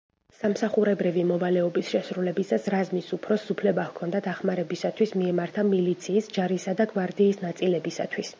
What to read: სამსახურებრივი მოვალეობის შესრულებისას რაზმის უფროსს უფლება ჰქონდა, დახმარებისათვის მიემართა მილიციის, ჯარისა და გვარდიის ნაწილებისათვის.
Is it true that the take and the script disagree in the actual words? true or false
false